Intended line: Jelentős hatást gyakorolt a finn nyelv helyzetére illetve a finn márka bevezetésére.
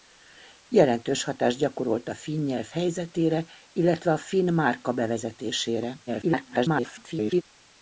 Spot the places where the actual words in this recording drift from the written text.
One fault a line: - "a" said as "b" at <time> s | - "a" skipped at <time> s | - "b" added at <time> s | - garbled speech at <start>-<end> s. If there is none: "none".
- garbled speech at 6.1-7.4 s